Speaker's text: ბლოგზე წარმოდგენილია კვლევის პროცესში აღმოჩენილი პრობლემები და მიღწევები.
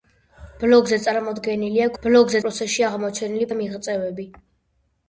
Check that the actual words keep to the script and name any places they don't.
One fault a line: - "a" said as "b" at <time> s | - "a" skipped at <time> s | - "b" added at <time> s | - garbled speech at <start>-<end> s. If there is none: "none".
- "კვლევის" said as "ბლოგზე" at 2.0 s
- "პრობლემები" skipped at 3.5 s